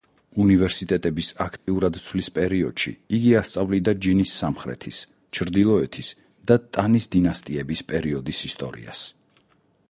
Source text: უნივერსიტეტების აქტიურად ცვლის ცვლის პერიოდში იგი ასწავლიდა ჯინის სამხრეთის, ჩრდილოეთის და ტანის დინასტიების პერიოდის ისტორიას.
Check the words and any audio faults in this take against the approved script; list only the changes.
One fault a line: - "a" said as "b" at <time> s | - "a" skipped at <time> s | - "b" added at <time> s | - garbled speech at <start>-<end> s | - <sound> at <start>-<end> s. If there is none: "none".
- dropout at 1.6-1.7 s
- "ცვლის" skipped at 2.3 s